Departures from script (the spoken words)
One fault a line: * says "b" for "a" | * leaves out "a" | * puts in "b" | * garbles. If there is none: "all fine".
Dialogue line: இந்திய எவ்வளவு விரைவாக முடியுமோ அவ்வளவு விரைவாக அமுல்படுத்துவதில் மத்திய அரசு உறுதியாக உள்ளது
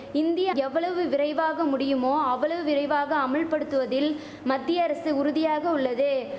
all fine